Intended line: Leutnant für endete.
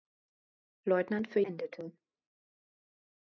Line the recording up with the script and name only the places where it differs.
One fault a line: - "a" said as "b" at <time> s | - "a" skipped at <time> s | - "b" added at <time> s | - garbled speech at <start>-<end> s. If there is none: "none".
none